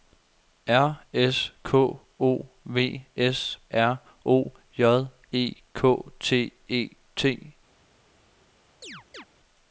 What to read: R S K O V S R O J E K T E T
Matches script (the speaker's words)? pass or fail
pass